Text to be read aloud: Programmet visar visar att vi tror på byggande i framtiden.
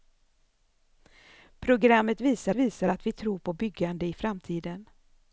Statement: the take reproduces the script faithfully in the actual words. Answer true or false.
true